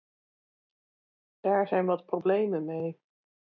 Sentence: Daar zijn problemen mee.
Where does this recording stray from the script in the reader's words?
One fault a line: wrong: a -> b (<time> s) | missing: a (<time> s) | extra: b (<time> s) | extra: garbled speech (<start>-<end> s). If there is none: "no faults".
extra: wat (1.9 s)